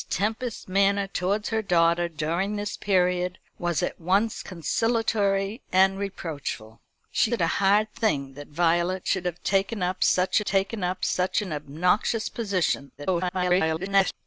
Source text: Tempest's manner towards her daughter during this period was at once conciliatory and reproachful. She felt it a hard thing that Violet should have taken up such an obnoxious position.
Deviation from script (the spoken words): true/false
true